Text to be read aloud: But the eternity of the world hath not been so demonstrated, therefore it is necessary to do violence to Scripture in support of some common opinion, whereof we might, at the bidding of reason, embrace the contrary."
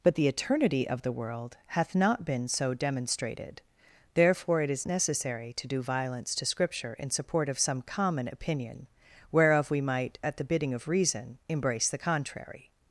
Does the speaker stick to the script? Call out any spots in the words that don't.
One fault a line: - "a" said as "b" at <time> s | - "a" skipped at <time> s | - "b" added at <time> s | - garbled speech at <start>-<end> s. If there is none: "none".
none